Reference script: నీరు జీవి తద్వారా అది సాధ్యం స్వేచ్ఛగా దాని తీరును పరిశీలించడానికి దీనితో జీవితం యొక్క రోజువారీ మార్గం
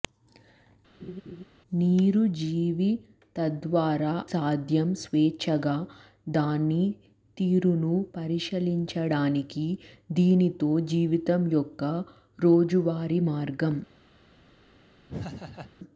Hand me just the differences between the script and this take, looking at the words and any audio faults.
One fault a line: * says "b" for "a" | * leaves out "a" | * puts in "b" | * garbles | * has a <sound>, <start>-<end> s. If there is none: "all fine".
* has a laugh, 1.0-1.4 s
* leaves out "అది"
* has a laugh, 15.1-15.7 s